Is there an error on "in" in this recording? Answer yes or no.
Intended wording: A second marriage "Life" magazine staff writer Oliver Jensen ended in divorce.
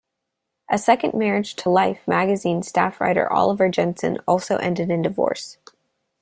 no